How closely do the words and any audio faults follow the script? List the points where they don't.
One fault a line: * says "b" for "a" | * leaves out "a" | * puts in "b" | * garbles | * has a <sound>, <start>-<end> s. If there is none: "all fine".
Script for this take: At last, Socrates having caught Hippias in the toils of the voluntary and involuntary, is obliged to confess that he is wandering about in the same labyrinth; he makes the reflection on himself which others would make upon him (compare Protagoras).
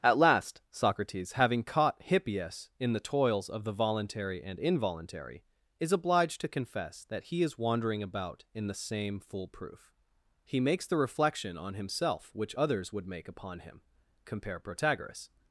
* says "foolproof" for "labyrinth"